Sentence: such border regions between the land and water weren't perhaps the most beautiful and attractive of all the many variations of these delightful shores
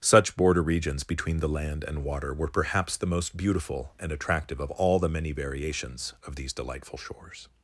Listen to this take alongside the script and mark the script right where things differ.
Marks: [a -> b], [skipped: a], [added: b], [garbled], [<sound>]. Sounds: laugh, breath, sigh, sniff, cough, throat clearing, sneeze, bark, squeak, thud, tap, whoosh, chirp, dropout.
such border regions between the land and water [weren't -> were] perhaps the most beautiful and attractive of all the many variations of these delightful shores